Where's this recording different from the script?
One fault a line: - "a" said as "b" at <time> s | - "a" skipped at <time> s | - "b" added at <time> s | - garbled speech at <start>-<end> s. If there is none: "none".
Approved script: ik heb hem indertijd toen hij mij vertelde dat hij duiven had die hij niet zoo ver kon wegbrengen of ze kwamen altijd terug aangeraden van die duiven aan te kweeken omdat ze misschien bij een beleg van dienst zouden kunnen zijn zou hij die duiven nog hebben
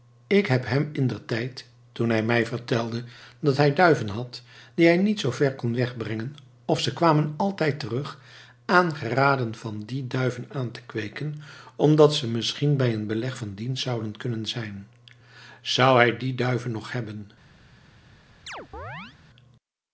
none